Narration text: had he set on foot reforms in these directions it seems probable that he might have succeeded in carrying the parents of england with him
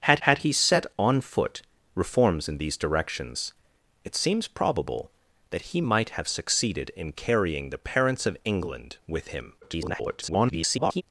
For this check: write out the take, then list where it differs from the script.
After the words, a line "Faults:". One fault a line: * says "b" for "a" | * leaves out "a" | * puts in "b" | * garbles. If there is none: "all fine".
had had he set on foot reforms in these directions it seems probable that he might have succeeded in carrying the parents of england with him [garbled]
Faults:
* puts in "had"
* garbles